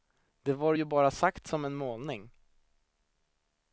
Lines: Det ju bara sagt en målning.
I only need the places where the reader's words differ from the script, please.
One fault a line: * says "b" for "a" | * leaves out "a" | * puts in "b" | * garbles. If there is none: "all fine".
* puts in "var"
* puts in "som"